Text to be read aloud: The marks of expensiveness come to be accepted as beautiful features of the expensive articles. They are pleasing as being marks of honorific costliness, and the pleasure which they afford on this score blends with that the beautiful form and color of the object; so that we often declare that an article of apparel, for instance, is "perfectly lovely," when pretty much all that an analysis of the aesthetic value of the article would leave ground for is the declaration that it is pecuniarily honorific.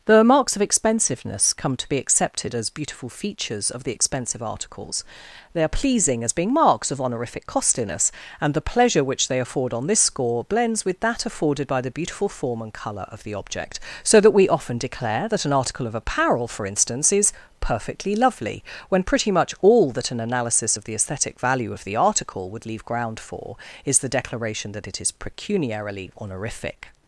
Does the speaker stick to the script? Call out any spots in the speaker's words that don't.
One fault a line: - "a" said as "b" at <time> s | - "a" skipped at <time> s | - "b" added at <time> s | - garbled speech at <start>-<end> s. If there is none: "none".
- "afforded by" added at 11.3 s